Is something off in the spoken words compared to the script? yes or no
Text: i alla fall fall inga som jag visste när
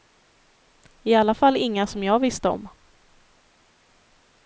yes